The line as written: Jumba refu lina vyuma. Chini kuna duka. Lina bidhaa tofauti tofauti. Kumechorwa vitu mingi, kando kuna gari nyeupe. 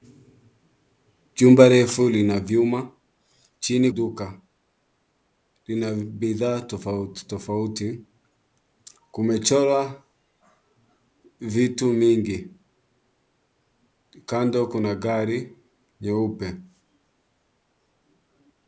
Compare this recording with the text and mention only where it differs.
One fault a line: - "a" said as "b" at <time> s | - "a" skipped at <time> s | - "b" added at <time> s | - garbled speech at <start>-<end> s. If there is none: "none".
- "kuna" skipped at 3.9 s